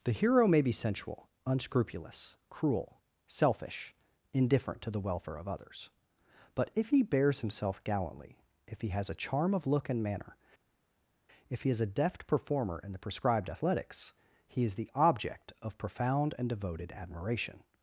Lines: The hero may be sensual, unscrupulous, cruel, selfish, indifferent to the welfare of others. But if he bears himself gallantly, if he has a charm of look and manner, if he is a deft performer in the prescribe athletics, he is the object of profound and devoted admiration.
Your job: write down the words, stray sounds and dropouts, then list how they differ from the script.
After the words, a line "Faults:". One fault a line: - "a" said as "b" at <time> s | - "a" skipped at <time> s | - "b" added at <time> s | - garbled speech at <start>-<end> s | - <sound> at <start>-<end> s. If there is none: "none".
The hero may be sensual, unscrupulous, cruel, selfish, indifferent to the welfare of others. But if he bears himself gallantly, if he has a charm of look and manner, if he is a deft performer in the prescribed athletics, he is the object of profound and devoted admiration.
Faults:
- "prescribe" said as "prescribed" at 13.0 s